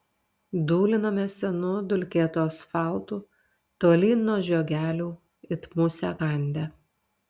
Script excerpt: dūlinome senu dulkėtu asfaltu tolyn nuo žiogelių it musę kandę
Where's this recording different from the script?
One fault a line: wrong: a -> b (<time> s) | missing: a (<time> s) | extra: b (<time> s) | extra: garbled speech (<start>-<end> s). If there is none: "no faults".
no faults